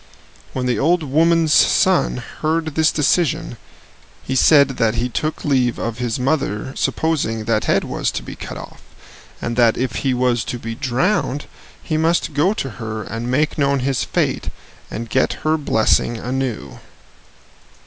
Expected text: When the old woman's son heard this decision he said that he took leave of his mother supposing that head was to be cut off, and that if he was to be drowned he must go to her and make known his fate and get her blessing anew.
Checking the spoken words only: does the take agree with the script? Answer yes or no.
yes